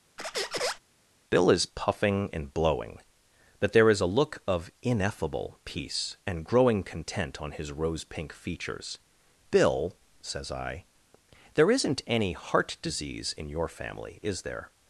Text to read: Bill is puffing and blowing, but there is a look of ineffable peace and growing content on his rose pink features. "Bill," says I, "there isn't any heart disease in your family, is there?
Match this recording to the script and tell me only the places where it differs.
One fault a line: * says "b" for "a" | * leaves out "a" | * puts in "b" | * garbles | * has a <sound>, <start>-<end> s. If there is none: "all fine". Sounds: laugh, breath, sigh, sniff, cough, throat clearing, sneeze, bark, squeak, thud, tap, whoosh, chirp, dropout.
* has a squeak, 0.2-0.8 s